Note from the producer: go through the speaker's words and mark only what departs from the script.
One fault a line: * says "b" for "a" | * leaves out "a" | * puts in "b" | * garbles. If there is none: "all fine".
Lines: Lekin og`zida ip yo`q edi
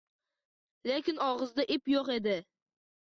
all fine